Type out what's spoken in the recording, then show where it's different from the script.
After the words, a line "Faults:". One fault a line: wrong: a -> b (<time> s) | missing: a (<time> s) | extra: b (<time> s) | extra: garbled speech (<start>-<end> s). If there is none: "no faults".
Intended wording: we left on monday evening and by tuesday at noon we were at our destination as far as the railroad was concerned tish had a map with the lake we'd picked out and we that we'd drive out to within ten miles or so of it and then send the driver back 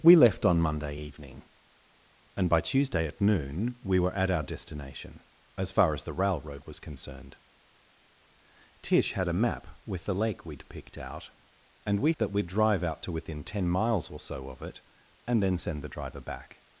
we left on monday evening and by tuesday at noon we were at our destination as far as the railroad was concerned tish had a map with the lake we'd picked out and we that we'd drive out to within ten miles or so of it and then send the driver back
Faults:
no faults